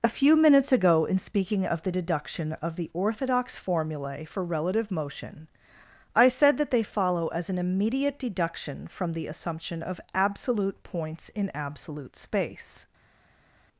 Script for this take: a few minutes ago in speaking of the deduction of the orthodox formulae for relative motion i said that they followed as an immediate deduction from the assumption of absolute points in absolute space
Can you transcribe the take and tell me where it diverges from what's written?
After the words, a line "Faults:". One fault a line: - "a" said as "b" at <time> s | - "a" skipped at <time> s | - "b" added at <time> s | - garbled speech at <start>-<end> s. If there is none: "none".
a few minutes ago in speaking of the deduction of the orthodox formulae for relative motion i said that they follow as an immediate deduction from the assumption of absolute points in absolute space
Faults:
- "followed" said as "follow" at 6.8 s